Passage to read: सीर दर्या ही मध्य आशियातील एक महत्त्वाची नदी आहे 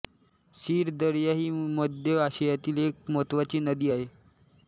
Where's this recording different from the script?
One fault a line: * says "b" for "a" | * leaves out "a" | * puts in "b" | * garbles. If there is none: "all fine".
all fine